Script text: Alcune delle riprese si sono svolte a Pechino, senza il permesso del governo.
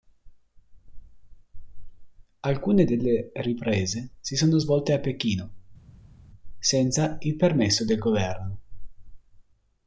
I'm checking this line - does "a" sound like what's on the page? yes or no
yes